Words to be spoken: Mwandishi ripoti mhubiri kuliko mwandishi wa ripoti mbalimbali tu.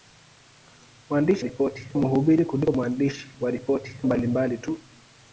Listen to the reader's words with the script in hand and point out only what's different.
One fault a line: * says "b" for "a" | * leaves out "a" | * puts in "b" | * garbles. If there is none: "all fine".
all fine